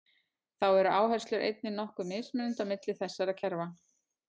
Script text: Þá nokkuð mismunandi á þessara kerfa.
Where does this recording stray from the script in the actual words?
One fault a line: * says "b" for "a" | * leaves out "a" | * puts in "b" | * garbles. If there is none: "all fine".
* puts in "eru áherslur einnig"
* puts in "milli"